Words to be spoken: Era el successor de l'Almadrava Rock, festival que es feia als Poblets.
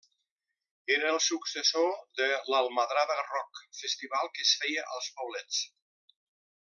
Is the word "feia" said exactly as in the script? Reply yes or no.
yes